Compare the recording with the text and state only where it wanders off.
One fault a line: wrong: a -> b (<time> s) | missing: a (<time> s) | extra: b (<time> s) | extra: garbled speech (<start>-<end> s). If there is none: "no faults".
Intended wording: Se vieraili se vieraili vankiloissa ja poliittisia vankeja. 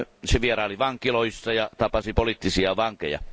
missing: se vieraili (0.8 s)
extra: tapasi (1.8 s)